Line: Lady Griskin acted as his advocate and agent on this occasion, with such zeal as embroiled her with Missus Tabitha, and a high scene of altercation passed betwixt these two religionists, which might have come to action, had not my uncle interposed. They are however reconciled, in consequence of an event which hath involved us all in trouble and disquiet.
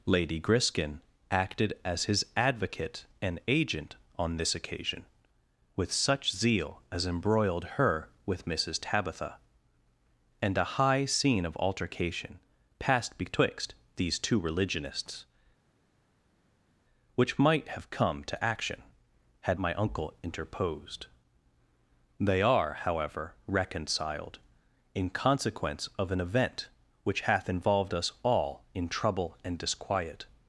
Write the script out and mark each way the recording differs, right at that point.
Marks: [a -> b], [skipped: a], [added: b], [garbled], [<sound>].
Lady Griskin acted as his advocate and agent on this occasion, with such zeal as embroiled her with Missus Tabitha, and a high scene of altercation passed betwixt these two religionists, which might have come to action, had [skipped: not] my uncle interposed. They are however reconciled, in consequence of an event which hath involved us all in trouble and disquiet.